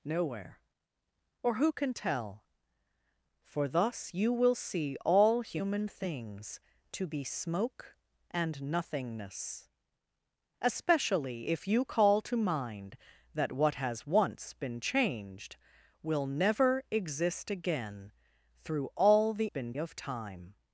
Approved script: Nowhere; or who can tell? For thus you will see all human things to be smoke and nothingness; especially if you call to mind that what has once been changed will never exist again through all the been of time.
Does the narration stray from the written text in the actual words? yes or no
no